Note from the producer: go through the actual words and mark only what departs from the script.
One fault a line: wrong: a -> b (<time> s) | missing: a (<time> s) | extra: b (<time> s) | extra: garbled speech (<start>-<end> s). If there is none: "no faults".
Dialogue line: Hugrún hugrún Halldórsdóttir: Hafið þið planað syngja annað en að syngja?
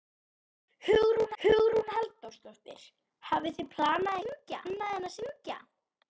no faults